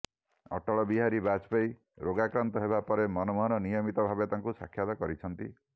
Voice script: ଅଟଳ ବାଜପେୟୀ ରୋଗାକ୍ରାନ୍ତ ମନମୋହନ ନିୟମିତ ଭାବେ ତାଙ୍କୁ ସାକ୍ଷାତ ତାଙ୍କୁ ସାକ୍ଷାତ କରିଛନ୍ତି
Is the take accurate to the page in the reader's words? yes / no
no